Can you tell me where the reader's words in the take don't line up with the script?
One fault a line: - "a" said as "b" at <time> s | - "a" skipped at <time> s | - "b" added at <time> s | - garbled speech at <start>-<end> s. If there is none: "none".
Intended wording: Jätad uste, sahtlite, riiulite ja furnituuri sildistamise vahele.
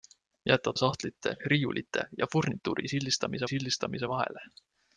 - "uste" skipped at 0.8 s
- "sildistamise" added at 3.5 s